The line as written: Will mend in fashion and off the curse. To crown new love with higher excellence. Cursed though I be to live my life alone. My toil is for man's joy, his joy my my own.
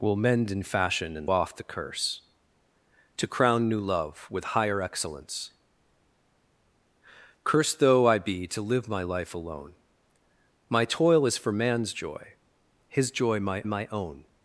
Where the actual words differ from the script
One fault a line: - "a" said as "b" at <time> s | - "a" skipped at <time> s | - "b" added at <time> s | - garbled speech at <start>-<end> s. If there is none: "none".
none